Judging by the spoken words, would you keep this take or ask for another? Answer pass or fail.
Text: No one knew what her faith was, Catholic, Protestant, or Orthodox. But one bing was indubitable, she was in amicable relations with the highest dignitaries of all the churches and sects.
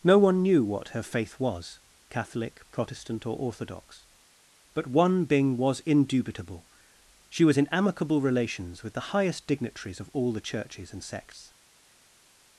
pass